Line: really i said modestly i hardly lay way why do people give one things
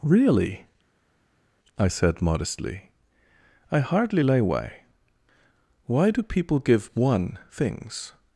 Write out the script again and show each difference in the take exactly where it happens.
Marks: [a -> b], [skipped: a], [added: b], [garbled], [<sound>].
really i said modestly i hardly lay way why do people give one things